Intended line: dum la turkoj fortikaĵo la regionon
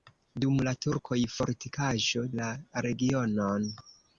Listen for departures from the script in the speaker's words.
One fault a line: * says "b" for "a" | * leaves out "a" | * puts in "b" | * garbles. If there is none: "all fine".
all fine